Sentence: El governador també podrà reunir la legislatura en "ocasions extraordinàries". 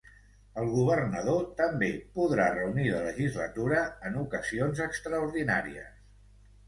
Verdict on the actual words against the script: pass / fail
pass